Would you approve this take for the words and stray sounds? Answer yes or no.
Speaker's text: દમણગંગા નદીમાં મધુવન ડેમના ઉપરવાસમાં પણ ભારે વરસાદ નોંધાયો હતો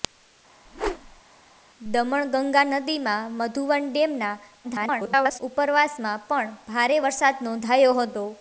no